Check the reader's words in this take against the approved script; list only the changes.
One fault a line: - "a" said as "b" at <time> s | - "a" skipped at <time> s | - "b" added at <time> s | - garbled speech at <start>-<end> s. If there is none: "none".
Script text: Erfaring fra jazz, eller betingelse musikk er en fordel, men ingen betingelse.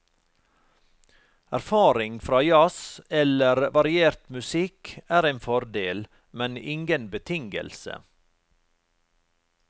- "betingelse" said as "variert" at 3.8 s